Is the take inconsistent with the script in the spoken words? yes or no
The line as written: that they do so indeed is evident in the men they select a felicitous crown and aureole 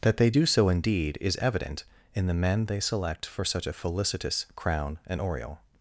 yes